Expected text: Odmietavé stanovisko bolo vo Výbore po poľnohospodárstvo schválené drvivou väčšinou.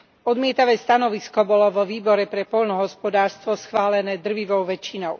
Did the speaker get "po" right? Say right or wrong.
wrong